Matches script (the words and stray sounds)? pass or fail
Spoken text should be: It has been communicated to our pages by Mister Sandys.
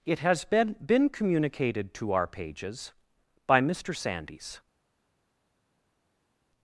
fail